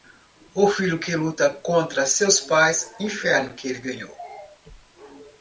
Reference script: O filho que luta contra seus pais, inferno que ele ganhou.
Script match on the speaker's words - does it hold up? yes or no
yes